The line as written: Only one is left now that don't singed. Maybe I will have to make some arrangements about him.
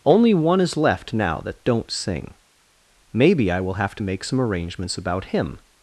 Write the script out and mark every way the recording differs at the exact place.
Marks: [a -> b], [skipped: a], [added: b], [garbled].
Only one is left now that don't [singed. -> sing] Maybe I will have to make some arrangements about him.